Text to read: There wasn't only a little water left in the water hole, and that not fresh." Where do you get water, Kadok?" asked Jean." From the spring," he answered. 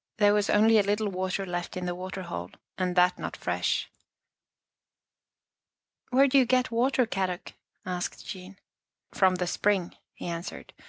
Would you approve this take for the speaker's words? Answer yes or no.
no